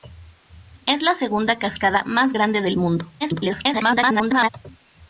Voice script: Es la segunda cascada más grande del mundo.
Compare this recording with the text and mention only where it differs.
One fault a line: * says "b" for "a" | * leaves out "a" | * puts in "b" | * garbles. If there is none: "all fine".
* garbles